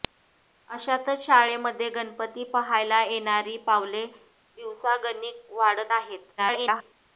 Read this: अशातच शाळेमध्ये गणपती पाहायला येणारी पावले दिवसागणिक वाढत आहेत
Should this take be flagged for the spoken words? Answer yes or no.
yes